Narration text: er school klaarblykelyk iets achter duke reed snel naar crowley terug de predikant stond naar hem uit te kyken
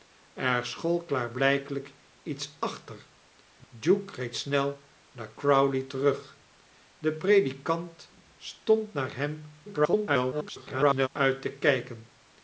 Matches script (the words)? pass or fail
fail